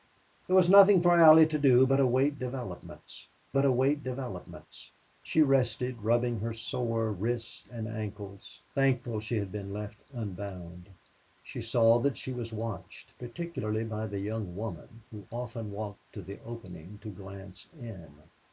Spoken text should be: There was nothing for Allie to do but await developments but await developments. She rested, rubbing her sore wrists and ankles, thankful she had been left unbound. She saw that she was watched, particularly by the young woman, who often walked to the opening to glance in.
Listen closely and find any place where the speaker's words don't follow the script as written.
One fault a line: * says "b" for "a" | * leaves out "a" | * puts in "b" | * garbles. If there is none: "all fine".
all fine